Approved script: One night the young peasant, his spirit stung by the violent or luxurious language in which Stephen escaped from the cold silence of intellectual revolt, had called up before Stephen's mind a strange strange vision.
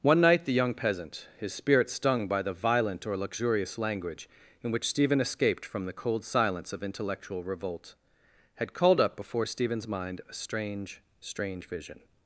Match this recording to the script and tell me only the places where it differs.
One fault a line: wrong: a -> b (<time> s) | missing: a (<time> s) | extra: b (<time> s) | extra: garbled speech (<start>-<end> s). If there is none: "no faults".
no faults